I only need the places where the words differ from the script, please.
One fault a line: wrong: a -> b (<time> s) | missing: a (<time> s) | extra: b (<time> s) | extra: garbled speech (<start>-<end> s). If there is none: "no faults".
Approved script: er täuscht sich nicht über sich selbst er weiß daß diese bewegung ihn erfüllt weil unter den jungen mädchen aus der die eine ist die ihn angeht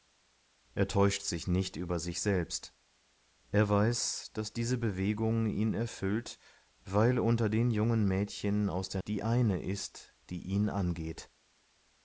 no faults